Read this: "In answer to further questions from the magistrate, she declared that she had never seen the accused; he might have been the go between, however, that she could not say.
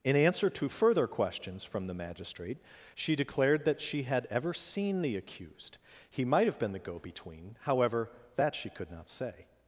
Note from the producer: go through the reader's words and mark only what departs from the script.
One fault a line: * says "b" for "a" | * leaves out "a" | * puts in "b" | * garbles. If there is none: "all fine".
* says "ever" for "never"